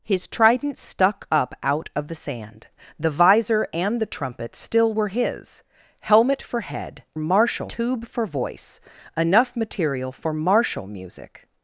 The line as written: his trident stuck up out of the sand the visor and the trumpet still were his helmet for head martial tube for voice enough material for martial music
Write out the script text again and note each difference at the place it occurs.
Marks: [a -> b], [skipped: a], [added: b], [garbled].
his trident stuck up out of the sand the visor and the trumpet still were his helmet for head martial tube for voice enough material for martial music